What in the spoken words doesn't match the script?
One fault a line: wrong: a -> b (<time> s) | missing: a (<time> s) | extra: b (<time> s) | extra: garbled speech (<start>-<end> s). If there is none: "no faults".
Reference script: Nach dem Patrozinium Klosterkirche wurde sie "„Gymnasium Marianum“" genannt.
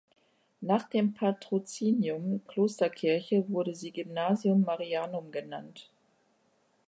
no faults